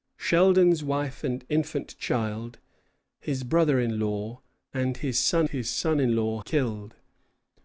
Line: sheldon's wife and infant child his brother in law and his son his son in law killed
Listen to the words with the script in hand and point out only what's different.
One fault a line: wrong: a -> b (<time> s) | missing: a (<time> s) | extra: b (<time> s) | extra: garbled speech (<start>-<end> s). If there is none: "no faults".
no faults